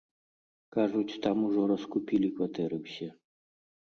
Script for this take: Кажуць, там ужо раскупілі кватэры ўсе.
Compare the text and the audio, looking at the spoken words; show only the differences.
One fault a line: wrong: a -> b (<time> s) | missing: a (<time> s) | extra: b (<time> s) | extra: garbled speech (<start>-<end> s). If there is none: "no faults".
no faults